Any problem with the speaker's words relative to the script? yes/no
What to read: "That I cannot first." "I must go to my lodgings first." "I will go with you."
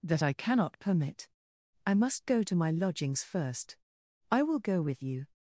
yes